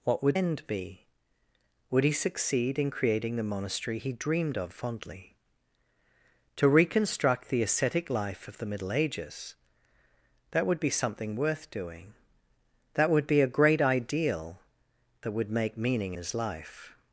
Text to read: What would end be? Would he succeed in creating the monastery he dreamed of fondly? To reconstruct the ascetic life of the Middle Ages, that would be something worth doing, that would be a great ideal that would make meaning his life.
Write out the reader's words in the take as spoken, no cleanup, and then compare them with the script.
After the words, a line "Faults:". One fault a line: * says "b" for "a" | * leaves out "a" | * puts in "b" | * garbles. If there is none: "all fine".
What would end be? Would he succeed in creating the monastery he dreamed of fondly? To reconstruct the ascetic life of the Middle Ages, that would be something worth doing, that would be a great ideal that would make meaning his life.
Faults:
all fine